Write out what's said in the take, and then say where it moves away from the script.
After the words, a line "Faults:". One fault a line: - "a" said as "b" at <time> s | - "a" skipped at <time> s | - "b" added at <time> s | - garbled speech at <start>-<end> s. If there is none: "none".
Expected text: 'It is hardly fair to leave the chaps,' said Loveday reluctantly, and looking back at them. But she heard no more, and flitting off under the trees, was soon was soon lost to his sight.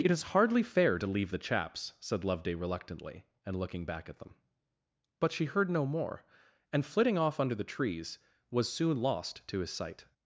'It is hardly fair to leave the chaps,' said Loveday reluctantly, and looking back at them. But she heard no more, and flitting off under the trees, was soon lost to his sight.
Faults:
- "was soon" skipped at 9.0 s